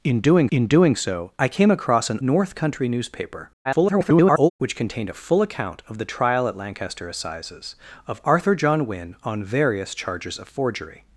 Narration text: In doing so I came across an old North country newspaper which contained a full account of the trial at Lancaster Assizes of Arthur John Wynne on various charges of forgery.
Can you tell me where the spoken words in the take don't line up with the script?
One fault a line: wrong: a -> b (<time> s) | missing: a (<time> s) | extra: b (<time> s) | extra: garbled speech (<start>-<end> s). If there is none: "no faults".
extra: in doing (0.5 s)
missing: old (2.2 s)
extra: garbled speech (3.6-4.5 s)